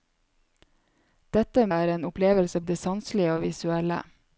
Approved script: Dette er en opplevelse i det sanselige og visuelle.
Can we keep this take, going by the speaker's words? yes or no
yes